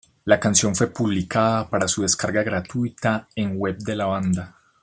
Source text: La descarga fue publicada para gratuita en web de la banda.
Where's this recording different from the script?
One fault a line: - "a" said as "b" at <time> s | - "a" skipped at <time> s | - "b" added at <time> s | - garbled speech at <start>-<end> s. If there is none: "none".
- "descarga" said as "canción" at 0.4 s
- "su descarga" added at 1.9 s